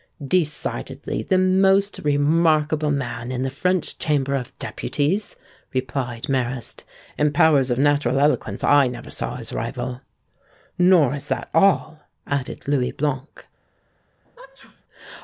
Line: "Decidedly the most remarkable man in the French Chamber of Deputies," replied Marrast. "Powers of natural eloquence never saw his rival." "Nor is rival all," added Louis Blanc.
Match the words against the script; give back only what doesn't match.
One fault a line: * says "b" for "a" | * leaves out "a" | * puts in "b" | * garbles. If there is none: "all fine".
* puts in "In"
* puts in "I"
* says "that" for "rival"